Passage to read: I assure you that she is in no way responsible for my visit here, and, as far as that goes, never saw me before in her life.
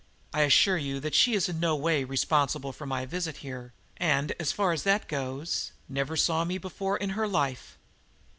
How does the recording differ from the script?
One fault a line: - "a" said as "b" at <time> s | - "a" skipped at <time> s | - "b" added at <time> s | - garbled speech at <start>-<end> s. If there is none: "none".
none